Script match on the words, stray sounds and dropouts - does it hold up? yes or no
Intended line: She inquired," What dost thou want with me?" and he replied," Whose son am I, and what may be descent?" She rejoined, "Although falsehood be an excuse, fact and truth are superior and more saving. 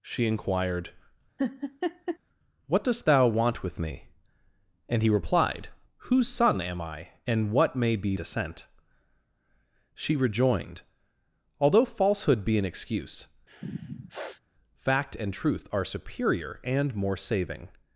no